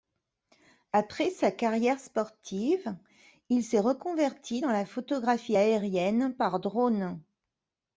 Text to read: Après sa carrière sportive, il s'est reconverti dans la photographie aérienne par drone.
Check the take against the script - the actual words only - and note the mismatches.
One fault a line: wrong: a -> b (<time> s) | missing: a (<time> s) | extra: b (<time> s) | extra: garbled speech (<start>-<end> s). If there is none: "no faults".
no faults